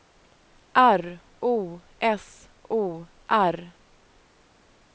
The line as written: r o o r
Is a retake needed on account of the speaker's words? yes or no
yes